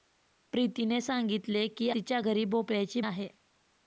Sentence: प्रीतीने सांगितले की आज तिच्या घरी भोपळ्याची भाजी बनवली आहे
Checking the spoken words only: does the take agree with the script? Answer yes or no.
no